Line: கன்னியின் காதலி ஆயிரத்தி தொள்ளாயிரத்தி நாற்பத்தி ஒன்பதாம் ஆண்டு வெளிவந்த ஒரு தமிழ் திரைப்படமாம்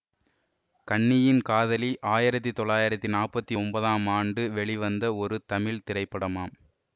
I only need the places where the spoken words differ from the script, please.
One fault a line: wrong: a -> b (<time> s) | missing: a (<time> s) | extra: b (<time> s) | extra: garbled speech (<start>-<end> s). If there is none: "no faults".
no faults